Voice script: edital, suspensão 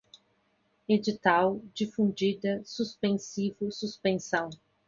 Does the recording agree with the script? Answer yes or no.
no